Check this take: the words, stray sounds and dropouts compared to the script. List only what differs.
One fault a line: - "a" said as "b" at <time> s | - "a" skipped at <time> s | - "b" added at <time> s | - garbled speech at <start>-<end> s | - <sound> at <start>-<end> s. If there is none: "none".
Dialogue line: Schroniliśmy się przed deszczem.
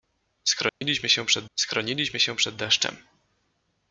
- dropout at 0.7-0.8 s
- "schroniliśmy się przed" added at 1.5 s